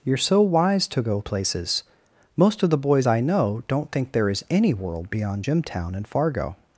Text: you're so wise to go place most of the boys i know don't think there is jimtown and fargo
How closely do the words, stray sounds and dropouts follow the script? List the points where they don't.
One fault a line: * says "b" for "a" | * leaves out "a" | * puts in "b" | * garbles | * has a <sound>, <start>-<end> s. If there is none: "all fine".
* says "places" for "place"
* puts in "any world beyond"